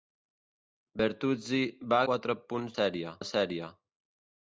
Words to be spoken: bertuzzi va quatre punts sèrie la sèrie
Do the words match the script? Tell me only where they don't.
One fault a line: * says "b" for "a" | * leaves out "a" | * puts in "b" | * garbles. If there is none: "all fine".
all fine